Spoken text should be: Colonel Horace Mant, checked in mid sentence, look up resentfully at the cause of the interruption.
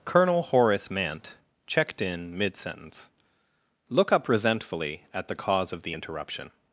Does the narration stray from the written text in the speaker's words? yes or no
no